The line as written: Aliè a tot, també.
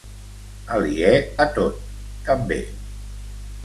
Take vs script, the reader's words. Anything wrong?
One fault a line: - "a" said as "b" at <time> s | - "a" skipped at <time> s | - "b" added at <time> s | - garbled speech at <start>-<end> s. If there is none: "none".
none